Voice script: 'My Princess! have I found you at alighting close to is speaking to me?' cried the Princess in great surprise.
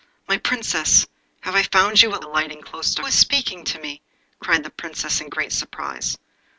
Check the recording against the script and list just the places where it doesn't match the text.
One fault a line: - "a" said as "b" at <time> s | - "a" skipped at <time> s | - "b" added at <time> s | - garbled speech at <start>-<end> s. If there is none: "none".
none